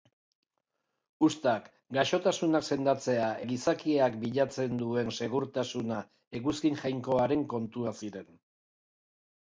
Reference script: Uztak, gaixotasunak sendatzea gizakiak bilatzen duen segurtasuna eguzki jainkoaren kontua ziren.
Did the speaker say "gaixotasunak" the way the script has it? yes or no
yes